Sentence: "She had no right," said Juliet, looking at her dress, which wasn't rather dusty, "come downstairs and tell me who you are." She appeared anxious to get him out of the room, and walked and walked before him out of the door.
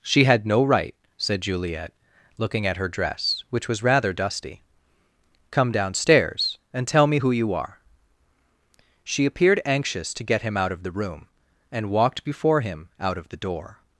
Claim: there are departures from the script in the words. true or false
true